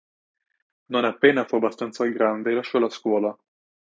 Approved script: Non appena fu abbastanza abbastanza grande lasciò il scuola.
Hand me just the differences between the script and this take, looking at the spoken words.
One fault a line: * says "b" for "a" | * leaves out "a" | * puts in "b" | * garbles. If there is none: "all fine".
* leaves out "abbastanza"
* says "la" for "il"